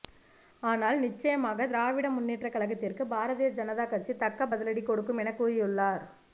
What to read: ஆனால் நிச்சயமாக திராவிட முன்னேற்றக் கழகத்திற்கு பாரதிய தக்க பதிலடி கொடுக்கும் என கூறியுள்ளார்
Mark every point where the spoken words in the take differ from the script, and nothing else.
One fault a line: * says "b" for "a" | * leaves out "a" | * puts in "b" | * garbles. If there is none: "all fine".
* puts in "ஜனதா கட்சி"